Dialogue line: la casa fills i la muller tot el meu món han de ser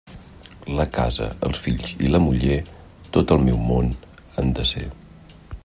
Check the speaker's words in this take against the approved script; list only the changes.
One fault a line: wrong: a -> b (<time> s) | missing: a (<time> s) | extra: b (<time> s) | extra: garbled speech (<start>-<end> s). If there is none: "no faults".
extra: els (1.5 s)